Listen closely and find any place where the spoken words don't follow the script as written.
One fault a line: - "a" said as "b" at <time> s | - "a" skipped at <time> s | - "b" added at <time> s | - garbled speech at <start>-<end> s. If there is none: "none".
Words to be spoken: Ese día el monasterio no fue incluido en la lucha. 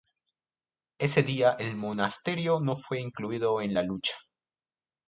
none